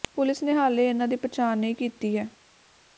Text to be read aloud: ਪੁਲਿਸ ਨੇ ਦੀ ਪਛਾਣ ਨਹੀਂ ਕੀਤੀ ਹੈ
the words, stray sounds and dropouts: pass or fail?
fail